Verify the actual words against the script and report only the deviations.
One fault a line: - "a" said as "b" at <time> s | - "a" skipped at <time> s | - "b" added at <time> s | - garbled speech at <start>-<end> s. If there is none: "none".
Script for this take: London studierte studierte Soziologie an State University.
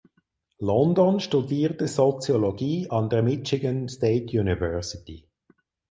- "studierte" skipped at 1.9 s
- "der Michigan" added at 3.1 s